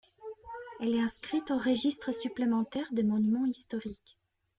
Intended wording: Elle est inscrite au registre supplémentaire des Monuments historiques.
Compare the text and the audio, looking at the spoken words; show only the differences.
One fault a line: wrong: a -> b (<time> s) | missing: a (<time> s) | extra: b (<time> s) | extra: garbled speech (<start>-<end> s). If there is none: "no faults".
no faults